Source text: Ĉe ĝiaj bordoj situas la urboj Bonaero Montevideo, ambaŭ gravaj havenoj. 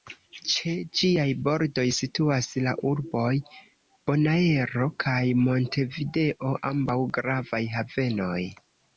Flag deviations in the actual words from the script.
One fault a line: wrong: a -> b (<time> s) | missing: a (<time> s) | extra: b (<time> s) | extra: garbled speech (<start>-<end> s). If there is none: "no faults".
extra: kaj (5.0 s)